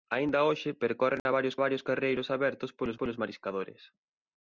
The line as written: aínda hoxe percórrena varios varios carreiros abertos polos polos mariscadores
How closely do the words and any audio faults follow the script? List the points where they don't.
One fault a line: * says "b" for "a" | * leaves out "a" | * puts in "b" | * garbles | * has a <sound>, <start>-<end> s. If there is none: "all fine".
* has a dropout, 1.2-1.3 s